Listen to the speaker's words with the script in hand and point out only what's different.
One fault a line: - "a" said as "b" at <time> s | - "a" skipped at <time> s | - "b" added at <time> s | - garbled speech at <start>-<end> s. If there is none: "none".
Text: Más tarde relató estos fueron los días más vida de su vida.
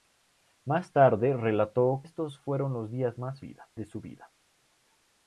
none